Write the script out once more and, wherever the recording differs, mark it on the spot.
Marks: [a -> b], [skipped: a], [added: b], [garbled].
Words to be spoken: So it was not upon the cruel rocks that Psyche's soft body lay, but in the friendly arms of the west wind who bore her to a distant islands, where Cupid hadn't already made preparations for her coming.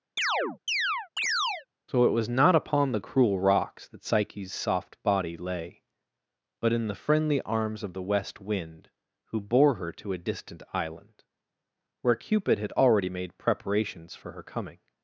So it was not upon the cruel rocks that Psyche's soft body lay, but in the friendly arms of the west wind who bore her to a distant [islands, -> island] where Cupid [hadn't -> had] already made preparations for her coming.